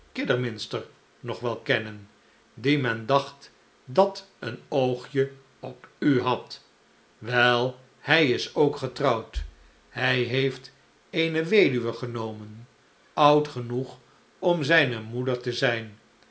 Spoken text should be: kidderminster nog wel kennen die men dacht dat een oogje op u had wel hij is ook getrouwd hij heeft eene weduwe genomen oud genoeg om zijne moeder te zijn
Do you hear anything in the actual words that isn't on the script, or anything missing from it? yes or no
no